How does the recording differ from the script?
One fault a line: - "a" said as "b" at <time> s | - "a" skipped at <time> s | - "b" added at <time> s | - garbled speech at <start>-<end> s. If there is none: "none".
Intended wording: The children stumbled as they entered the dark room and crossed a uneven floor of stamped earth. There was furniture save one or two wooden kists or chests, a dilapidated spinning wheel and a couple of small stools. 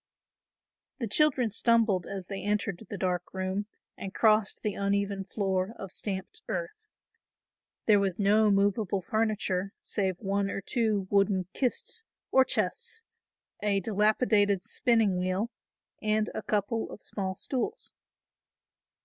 - "a" said as "the" at 4.6 s
- "no movable" added at 8.2 s